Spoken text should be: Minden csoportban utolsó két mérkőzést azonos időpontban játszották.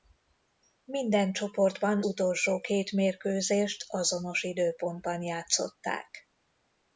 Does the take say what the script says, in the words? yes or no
yes